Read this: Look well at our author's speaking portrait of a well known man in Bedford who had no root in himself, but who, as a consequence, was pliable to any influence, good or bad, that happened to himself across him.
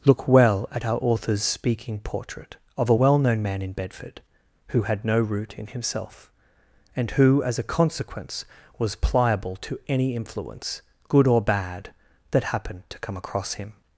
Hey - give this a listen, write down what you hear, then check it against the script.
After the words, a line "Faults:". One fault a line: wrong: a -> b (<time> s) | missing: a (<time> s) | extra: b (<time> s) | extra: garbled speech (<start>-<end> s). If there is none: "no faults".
Look well at our author's speaking portrait of a well known man in Bedford who had no root in himself, and who, as a consequence, was pliable to any influence, good or bad, that happened to come across him.
Faults:
wrong: but -> and (6.9 s)
wrong: himself -> come (13.0 s)